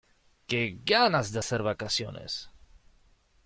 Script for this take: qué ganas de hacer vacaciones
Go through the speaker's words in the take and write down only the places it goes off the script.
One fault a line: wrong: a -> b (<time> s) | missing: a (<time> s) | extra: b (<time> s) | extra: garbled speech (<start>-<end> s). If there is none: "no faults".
no faults